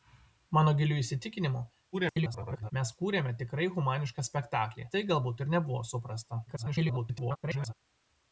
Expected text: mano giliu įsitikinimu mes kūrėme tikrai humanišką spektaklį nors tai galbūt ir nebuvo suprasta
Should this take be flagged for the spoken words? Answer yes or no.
yes